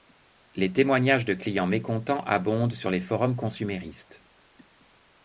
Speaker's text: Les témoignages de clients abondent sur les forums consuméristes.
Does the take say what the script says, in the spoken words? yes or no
no